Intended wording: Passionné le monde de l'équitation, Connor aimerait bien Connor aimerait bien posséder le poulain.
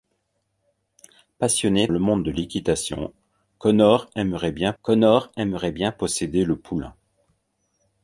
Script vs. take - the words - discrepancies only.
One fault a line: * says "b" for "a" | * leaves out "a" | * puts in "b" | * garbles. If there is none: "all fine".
all fine